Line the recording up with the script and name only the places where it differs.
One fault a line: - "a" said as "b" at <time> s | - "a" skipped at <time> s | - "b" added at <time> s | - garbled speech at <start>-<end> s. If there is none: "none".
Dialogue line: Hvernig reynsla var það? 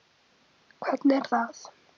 - "reynsla" skipped at 1.2 s